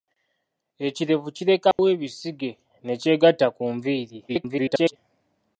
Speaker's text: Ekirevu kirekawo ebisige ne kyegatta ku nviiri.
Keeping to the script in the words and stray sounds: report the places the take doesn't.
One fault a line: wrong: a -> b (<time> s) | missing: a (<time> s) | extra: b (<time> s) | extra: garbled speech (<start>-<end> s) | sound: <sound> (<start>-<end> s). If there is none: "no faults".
sound: dropout (1.7-1.8 s)
extra: garbled speech (4.3-5.0 s)